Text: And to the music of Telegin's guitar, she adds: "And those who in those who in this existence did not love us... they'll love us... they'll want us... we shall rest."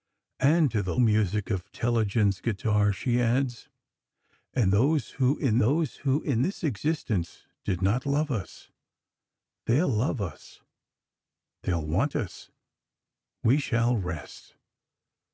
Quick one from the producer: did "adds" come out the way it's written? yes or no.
yes